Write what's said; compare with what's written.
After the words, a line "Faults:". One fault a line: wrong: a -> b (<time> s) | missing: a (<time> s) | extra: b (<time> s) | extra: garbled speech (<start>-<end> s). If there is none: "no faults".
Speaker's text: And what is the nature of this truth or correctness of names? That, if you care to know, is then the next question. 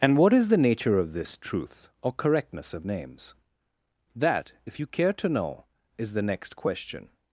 And what is the nature of this truth or correctness of names? That, if you care to know, is the next question.
Faults:
missing: then (6.1 s)